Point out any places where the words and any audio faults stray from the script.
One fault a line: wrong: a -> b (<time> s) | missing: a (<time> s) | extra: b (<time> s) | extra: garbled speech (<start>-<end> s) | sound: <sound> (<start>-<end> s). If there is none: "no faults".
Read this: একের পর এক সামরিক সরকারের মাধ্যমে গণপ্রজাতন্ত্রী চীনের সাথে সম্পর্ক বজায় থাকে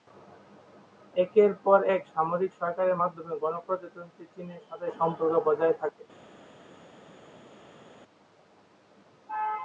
no faults